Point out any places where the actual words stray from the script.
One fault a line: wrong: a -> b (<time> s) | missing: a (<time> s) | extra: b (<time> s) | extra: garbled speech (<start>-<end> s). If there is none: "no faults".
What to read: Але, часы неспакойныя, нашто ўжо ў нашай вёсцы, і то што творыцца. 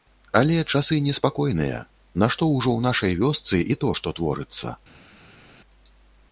no faults